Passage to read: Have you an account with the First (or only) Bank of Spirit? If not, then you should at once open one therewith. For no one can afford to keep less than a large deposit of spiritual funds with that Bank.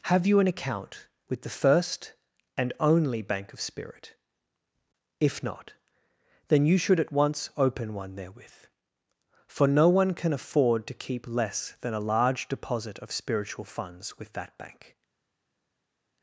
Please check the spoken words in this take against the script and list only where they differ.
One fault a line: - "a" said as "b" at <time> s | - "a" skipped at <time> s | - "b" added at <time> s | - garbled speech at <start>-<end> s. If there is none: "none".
- "or" said as "and" at 2.6 s